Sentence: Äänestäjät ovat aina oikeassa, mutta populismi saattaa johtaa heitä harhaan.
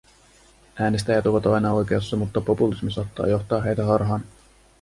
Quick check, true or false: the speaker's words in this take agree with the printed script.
true